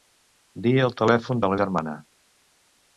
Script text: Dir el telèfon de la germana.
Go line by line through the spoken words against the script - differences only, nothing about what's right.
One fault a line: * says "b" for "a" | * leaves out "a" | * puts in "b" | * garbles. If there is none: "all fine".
all fine